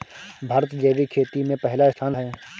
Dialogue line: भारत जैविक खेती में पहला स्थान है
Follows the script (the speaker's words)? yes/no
yes